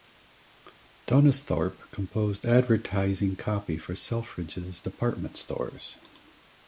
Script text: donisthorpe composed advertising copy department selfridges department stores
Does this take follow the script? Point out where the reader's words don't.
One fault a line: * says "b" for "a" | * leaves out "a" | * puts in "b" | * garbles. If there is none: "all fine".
* says "for" for "department"